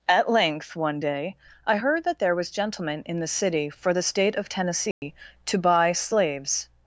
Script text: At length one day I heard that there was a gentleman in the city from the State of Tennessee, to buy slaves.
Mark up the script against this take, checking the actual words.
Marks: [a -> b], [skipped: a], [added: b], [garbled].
At length one day I heard that there was [skipped: a] gentleman in the city [from -> for] the State of Tennessee, to buy slaves.